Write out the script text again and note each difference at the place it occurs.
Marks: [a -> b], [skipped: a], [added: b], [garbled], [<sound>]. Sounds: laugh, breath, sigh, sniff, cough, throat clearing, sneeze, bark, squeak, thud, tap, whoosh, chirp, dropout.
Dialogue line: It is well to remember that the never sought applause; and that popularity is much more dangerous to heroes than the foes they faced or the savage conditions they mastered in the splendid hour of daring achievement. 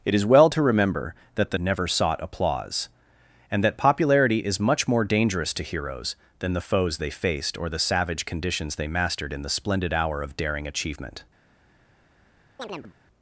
It is well to remember that the never sought applause; and that popularity is much more dangerous to heroes than the foes they faced or the savage conditions they mastered in the splendid hour of daring achievement. [chirp]